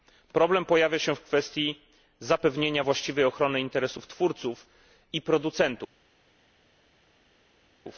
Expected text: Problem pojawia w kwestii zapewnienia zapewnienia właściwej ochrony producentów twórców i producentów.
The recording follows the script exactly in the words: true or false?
false